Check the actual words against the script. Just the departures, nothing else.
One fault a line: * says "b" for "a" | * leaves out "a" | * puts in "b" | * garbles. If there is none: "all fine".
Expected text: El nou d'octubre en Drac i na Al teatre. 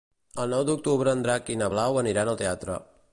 * puts in "Blau aniran"